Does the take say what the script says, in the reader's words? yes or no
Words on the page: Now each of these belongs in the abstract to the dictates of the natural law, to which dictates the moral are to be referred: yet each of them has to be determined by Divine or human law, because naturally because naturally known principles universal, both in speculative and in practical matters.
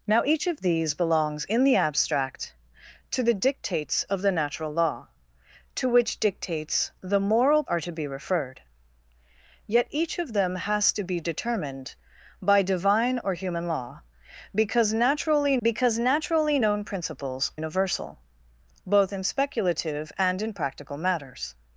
yes